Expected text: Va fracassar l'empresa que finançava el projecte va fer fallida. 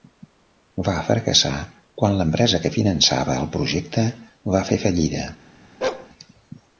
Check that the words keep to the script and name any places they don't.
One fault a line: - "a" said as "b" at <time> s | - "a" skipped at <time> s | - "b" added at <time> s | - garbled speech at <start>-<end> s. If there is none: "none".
- "quan" added at 2.0 s